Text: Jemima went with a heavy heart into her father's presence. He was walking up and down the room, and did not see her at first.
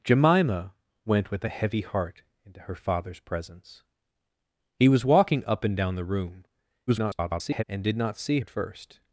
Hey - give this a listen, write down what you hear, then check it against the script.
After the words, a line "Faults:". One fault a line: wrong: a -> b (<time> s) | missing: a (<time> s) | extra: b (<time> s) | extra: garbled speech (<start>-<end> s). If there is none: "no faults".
Jemima went with a heavy heart into her father's presence. He was walking up and down the room, [garbled] and did not see at first.
Faults:
extra: garbled speech (6.9-7.6 s)
missing: her (8.4 s)